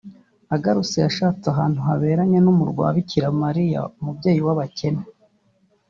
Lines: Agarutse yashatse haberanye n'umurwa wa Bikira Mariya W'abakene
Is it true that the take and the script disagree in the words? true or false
true